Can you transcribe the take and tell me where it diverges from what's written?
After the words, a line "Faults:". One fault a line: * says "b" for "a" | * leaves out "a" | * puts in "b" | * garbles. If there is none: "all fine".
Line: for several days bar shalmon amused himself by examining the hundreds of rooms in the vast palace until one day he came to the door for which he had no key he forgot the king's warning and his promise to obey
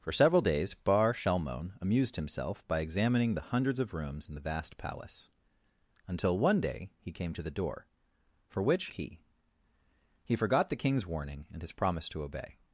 for several days bar shalmon amused himself by examining the hundreds of rooms in the vast palace until one day he came to the door for which key he forgot the king's warning and his promise to obey
Faults:
* leaves out "he had no"